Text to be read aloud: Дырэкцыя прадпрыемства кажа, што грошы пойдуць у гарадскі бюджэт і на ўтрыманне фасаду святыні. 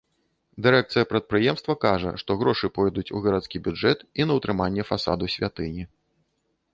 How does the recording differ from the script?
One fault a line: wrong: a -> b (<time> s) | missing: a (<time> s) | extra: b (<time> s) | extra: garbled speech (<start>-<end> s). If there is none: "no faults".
no faults